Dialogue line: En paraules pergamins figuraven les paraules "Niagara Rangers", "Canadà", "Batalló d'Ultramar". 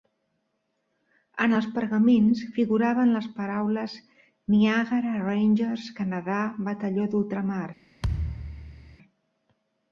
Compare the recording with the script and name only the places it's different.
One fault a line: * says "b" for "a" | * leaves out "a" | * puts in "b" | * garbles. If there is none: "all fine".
* says "els" for "paraules"